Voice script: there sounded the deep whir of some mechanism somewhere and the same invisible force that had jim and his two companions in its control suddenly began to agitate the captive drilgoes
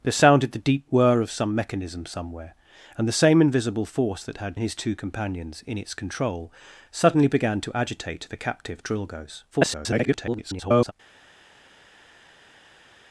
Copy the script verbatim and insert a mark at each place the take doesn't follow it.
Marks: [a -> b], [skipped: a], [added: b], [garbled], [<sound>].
there sounded the deep whir of some mechanism somewhere and the same invisible force that had [skipped: jim] and his two companions in its control suddenly began to agitate the captive drilgoes [garbled]